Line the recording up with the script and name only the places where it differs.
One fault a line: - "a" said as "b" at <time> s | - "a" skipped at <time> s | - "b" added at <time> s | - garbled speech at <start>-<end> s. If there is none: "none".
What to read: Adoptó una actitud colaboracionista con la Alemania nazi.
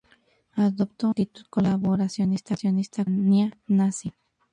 - "una" skipped at 1.1 s
- "con" skipped at 2.5 s